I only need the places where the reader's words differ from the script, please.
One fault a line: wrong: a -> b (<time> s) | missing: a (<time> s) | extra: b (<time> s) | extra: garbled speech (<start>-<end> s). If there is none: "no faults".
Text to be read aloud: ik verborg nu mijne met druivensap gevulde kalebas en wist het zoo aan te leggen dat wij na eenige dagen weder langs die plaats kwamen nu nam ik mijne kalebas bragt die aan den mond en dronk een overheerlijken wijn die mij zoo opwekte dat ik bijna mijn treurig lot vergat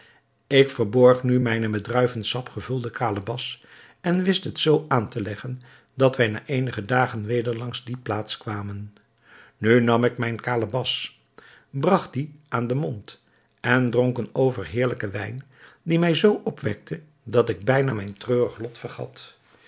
no faults